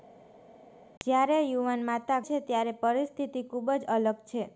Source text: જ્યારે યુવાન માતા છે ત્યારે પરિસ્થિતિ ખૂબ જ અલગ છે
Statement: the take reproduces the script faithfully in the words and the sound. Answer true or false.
true